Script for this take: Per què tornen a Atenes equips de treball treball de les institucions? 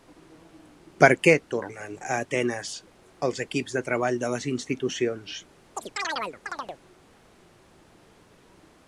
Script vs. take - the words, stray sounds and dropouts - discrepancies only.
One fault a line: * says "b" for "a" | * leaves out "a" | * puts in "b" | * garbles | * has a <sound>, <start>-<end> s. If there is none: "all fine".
* puts in "els"
* leaves out "treball"
* has a chirp, 5.8-6.8 s